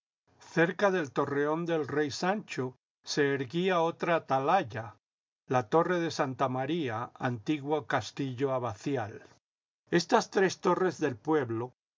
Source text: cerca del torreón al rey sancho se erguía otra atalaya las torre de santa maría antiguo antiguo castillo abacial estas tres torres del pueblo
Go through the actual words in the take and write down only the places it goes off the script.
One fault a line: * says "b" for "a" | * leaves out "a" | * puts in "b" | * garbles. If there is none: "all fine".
* says "del" for "al"
* says "la" for "las"
* leaves out "antiguo"